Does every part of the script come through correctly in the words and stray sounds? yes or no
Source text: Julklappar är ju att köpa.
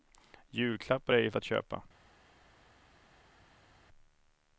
yes